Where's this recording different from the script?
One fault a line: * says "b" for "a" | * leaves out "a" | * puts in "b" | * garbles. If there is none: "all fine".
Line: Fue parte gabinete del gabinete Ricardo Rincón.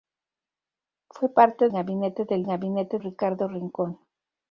all fine